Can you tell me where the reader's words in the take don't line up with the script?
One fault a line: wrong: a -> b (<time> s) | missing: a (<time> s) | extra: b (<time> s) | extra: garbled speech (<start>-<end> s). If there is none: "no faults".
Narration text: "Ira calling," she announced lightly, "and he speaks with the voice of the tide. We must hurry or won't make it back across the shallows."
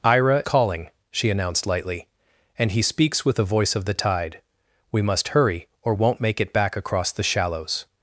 no faults